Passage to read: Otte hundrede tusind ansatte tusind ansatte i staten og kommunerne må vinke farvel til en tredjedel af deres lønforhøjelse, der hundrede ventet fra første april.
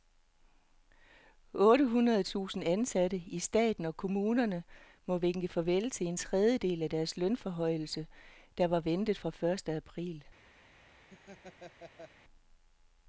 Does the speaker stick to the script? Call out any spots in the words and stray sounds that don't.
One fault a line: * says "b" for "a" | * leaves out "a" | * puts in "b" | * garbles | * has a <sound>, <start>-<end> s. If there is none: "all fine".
* leaves out "tusind ansatte"
* says "var" for "hundrede"
* has a laugh, 11.1-12.1 s